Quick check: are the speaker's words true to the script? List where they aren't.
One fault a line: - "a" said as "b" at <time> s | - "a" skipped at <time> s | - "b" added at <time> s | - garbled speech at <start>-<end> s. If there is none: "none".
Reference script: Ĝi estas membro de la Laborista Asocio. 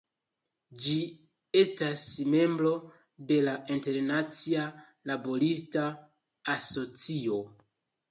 - "Internacia" added at 3.8 s